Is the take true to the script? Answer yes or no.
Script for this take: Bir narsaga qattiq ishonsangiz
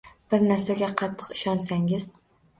yes